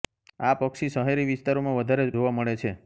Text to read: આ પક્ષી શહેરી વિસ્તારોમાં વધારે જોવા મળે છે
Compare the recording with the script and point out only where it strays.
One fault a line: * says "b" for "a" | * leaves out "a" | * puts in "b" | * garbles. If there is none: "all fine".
all fine